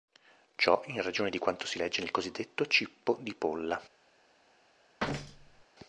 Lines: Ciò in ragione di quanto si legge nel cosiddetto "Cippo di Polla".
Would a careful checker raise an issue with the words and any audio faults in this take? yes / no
yes